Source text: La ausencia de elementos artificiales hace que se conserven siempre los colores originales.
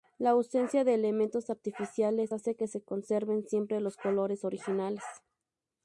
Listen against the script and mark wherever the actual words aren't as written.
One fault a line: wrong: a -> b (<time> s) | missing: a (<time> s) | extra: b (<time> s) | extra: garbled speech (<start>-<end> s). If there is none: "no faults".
no faults